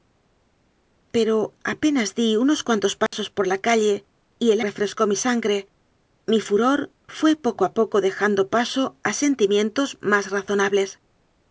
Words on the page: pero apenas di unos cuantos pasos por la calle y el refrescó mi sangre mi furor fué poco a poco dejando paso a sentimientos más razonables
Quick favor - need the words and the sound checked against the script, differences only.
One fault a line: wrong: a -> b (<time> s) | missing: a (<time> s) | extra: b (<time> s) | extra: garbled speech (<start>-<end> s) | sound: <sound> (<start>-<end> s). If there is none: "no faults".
sound: dropout (3.1-3.1 s)